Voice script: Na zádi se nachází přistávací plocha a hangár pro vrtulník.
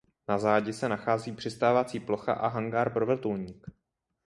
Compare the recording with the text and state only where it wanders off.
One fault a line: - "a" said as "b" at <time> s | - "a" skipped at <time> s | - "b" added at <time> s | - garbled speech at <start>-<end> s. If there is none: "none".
none